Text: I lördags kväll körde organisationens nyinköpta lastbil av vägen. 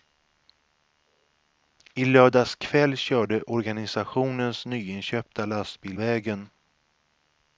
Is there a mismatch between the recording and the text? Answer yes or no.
yes